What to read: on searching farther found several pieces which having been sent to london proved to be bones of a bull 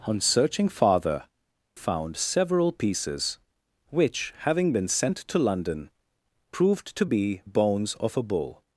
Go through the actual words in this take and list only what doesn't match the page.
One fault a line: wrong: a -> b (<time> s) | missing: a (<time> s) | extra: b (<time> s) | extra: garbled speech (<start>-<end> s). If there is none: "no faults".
no faults